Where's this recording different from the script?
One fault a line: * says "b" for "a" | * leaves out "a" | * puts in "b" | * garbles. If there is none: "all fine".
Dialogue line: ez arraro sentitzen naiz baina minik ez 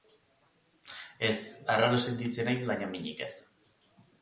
all fine